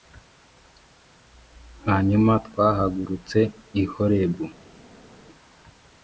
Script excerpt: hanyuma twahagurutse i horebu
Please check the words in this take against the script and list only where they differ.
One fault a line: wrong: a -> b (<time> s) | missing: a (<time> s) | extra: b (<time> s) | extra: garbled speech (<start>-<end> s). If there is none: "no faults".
no faults